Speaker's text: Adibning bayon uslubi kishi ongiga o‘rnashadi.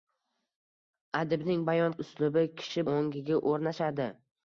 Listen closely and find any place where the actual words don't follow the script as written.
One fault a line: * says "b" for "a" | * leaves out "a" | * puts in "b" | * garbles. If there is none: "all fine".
all fine